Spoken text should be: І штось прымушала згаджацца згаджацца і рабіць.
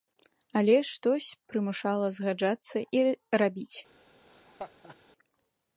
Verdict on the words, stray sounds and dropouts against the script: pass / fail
fail